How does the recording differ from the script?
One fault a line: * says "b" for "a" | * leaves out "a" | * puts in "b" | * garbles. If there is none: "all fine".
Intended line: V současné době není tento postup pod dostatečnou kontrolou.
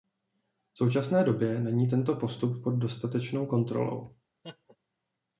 all fine